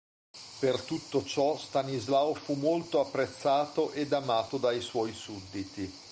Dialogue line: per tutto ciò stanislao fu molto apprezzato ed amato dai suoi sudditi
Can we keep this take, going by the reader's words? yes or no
yes